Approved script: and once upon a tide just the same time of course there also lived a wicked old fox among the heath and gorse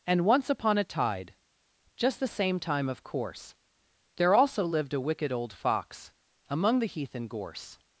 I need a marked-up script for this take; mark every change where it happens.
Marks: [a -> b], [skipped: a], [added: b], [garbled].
and once upon a tide just the same time of course there also lived a wicked old fox among the heath and gorse